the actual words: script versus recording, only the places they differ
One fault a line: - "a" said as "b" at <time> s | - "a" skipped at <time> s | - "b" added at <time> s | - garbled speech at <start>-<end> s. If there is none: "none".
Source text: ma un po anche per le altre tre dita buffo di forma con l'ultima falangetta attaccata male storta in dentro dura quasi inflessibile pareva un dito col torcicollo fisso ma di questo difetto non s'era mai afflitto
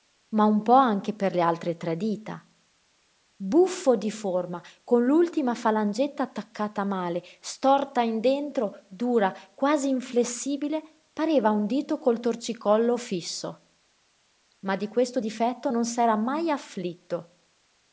none